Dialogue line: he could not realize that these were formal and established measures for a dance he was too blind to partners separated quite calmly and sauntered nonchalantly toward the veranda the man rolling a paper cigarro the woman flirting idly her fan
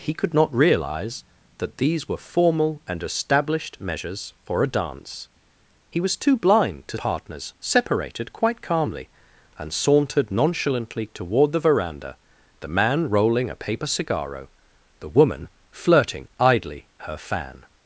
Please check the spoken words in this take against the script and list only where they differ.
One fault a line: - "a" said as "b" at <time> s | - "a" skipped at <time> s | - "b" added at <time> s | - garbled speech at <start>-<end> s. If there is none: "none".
none